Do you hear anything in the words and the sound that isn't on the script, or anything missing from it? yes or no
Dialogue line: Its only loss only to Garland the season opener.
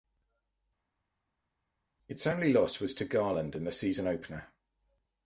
yes